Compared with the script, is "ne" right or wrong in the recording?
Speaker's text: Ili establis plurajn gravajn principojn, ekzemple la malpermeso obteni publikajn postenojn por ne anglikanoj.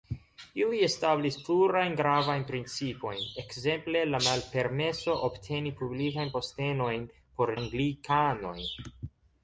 wrong